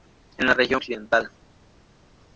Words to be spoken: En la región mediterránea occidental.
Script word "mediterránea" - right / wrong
wrong